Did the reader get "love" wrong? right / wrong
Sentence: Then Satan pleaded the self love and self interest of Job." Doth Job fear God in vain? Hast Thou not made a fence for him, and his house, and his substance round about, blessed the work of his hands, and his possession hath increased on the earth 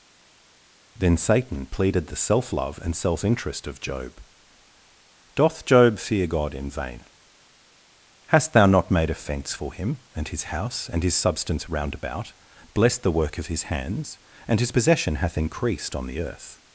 right